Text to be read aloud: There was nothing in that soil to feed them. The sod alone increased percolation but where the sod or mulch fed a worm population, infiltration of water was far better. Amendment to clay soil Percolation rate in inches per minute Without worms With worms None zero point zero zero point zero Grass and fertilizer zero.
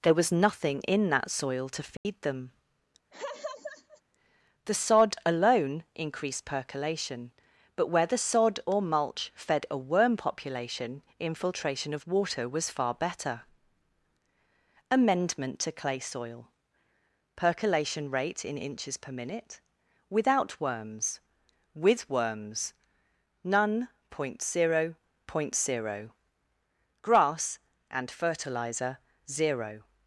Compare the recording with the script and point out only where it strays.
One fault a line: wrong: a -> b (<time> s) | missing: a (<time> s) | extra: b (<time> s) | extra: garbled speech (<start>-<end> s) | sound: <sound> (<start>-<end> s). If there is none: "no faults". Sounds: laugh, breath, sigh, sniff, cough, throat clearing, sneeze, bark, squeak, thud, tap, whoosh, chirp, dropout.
sound: dropout (2.0-2.1 s)
sound: laugh (3.1-4.0 s)
missing: zero (23.9 s)
missing: zero (25.0 s)